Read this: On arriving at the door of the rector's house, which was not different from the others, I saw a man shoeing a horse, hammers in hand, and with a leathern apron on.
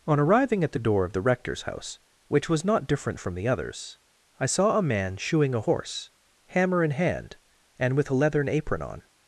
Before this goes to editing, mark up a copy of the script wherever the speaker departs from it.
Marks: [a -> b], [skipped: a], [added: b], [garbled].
On arriving at the door of the rector's house, which was not different from the others, I saw a man shoeing a horse, [hammers -> hammer] in hand, and with a leathern apron on.